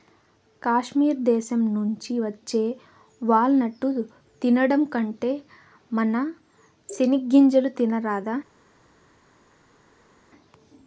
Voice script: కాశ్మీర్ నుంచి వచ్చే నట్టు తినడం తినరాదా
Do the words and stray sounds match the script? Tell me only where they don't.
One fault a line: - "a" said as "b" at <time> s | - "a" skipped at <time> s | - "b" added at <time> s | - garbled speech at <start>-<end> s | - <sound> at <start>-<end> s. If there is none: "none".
- "దేశం" added at 1.2 s
- "వాల్" added at 3.2 s
- "కంటే మన సెనిగ్గింజలు" added at 4.9 s